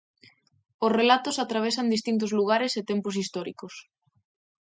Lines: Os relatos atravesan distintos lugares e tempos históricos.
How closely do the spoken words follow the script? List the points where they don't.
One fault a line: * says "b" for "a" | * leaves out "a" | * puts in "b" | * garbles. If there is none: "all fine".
all fine